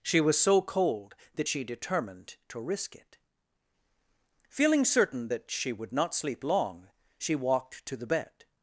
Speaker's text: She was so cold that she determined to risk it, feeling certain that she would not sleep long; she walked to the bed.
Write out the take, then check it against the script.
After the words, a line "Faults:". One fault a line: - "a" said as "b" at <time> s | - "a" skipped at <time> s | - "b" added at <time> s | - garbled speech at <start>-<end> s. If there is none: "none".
She was so cold that she determined to risk it, feeling certain that she would not sleep long; she walked to the bed.
Faults:
none